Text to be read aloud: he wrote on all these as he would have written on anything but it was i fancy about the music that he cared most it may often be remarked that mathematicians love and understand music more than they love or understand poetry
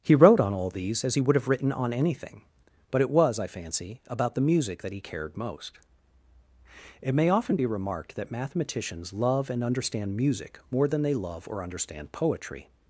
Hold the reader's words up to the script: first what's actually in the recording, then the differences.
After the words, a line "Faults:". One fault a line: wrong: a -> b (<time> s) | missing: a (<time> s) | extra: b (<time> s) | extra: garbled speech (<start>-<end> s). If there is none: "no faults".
he wrote on all these as he would have written on anything but it was i fancy about the music that he cared most it may often be remarked that mathematicians love and understand music more than they love or understand poetry
Faults:
no faults